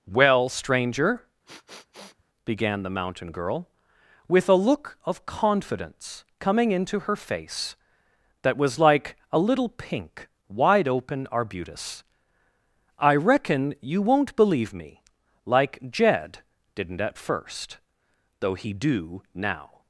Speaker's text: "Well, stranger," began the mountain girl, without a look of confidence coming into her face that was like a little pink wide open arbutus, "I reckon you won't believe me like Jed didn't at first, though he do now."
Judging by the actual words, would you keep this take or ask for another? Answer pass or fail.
fail